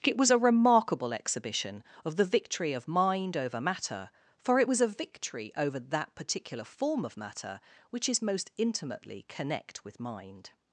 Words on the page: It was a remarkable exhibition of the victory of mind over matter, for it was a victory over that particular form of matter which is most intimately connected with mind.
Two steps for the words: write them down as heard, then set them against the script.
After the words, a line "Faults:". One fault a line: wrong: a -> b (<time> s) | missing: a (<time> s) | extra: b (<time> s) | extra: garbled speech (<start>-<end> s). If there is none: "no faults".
It was a remarkable exhibition of the victory of mind over matter, for it was a victory over that particular form of matter which is most intimately connect with mind.
Faults:
wrong: connected -> connect (9.3 s)